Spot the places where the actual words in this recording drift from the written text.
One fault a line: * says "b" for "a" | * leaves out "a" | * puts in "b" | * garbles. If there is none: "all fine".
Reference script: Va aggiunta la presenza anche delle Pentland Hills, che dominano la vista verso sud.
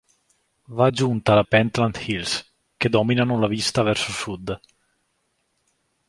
* leaves out "presenza anche delle"